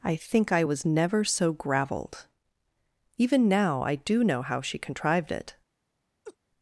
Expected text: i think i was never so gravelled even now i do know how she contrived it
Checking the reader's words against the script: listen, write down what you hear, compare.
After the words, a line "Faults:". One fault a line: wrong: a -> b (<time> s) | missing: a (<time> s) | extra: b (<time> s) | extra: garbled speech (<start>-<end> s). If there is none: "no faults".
i think i was never so gravelled even now i do know how she contrived it
Faults:
no faults